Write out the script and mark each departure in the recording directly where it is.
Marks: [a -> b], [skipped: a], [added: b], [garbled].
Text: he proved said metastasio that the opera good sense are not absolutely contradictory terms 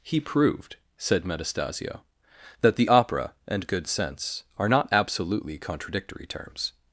he proved said metastasio that the opera [added: and] good sense are not absolutely contradictory terms